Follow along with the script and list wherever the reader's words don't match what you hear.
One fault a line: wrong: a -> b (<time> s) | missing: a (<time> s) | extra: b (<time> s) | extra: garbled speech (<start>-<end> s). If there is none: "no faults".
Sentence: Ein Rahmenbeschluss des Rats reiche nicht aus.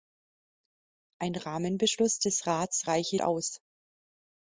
missing: nicht (3.2 s)